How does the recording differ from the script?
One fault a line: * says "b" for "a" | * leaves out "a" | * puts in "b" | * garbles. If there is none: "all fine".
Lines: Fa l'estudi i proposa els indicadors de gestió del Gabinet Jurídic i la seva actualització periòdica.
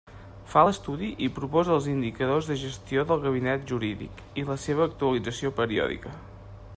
all fine